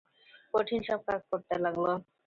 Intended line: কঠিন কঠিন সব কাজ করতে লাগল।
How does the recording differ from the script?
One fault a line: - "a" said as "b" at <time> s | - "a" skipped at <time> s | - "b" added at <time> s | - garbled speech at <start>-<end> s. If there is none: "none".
- "কঠিন" skipped at 0.8 s